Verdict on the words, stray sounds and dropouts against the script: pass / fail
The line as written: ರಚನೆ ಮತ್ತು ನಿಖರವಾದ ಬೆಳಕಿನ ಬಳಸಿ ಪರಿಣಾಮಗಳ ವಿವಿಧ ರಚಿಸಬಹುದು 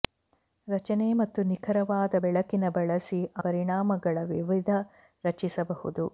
pass